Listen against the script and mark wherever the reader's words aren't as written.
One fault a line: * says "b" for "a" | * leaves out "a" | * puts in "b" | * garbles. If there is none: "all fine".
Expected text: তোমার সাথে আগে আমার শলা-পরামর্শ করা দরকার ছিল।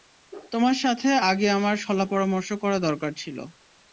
all fine